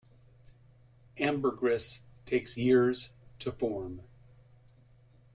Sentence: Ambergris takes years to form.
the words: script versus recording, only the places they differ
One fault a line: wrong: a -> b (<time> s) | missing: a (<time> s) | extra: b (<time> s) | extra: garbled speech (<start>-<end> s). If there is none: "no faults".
no faults